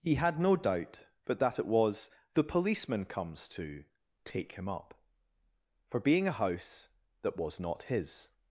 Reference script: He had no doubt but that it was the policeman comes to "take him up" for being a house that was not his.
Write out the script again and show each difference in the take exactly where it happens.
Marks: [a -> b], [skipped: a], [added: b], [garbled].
He had no doubt but that it was the policeman comes to "take him up" for being a house that was not his.